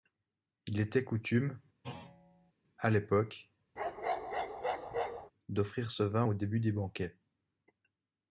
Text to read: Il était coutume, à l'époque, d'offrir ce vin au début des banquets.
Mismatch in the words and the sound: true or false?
true